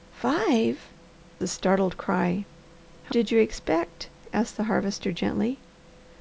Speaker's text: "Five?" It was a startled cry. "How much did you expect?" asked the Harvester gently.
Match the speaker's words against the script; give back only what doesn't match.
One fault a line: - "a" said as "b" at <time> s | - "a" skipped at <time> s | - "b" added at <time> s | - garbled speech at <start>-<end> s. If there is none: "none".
- "It was" skipped at 0.9 s
- "much" skipped at 3.1 s